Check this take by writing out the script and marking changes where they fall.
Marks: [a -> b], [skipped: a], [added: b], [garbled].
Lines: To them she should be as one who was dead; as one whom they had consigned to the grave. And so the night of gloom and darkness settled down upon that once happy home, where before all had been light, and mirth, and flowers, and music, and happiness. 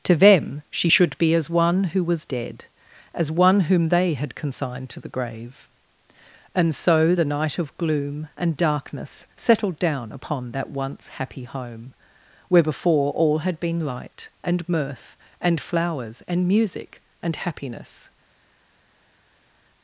To them she should be as one who was dead; as one whom they had consigned to the grave. And so the night of gloom and darkness settled down upon that once happy home, where before all had been light, and mirth, and flowers, and music, and happiness.